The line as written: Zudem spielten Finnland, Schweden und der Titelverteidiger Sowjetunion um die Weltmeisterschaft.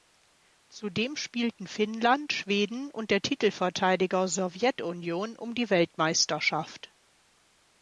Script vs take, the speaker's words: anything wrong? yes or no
no